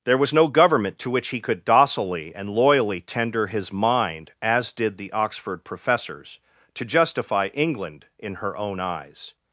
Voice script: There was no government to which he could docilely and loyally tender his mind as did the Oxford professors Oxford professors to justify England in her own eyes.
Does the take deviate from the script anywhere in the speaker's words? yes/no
yes